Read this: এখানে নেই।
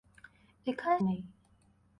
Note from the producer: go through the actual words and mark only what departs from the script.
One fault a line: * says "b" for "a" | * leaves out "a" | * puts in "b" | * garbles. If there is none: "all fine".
all fine